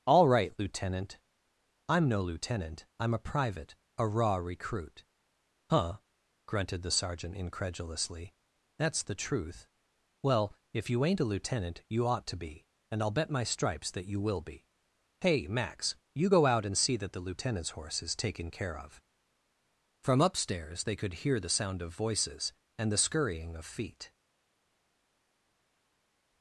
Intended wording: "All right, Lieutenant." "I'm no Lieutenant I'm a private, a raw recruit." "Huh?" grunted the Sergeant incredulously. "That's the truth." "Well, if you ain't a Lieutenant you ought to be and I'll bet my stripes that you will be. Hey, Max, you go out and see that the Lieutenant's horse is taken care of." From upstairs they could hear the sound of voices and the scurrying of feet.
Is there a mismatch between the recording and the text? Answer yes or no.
no